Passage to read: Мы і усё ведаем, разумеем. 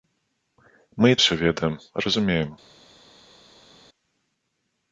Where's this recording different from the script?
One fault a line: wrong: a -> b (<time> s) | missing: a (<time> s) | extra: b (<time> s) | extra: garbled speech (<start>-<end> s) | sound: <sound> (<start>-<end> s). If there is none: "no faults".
no faults